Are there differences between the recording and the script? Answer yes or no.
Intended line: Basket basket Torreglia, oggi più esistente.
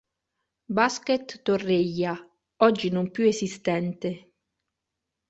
yes